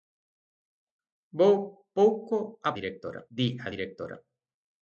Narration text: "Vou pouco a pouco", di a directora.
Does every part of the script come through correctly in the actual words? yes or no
no